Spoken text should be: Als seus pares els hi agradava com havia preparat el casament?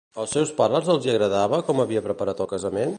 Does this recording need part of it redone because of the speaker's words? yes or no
no